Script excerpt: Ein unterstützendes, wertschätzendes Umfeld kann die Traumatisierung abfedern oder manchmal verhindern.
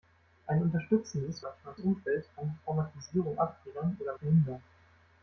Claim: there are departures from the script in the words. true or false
true